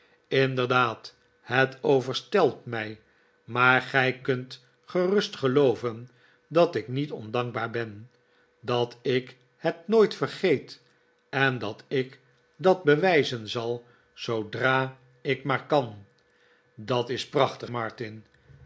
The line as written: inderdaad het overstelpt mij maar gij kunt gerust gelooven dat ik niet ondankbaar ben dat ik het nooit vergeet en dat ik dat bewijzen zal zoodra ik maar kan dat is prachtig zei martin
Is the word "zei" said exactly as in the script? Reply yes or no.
no